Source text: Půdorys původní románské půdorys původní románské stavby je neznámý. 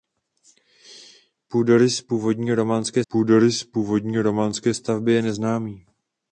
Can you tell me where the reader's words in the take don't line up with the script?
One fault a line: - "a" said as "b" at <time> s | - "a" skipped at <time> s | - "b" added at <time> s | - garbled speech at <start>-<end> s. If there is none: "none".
none